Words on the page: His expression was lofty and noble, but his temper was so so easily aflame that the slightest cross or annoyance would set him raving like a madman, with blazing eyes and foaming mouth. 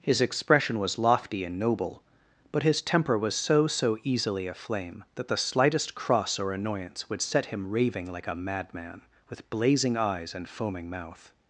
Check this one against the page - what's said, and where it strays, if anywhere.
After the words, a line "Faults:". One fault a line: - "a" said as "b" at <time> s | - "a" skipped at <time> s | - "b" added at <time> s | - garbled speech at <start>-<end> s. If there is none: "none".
His expression was lofty and noble, but his temper was so so easily aflame that the slightest cross or annoyance would set him raving like a madman, with blazing eyes and foaming mouth.
Faults:
none